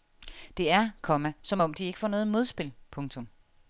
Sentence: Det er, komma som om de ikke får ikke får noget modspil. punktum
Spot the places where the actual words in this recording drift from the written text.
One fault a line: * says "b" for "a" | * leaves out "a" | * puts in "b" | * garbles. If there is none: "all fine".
* leaves out "ikke får"